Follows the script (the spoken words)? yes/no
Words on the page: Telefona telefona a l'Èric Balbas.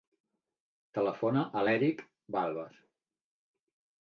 no